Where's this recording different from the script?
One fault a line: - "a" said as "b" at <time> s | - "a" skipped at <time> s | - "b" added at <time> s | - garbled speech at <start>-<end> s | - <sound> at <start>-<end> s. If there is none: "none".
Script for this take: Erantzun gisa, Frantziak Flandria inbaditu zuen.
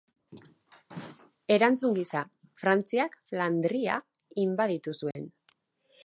- dropout at 5.1-5.2 s